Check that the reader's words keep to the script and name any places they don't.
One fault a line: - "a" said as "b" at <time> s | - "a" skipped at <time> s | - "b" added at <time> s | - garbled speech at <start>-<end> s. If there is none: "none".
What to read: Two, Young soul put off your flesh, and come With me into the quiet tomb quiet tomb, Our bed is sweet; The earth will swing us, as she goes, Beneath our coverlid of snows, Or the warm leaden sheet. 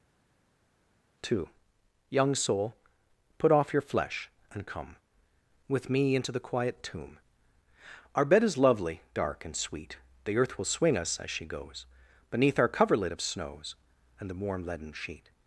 - "quiet tomb" skipped at 7.2 s
- "lovely dark and" added at 8.6 s
- "Or" said as "And" at 14.2 s